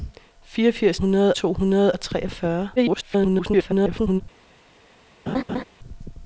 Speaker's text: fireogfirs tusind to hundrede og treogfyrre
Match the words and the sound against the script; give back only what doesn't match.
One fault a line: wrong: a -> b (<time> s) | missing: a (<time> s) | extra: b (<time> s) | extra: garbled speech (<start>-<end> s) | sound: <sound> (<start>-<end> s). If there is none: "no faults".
wrong: tusind -> hundrede (0.9 s)
extra: garbled speech (2.8-4.2 s)
sound: laugh (5.3-5.6 s)